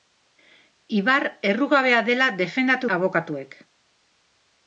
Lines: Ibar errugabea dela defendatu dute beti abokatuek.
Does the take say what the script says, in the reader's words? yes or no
no